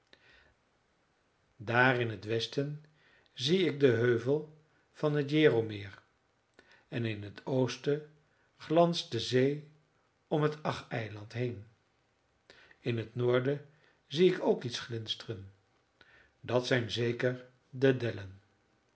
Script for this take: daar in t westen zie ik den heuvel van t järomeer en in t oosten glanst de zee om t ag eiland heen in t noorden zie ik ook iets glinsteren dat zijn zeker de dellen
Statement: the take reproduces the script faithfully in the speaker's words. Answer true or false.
true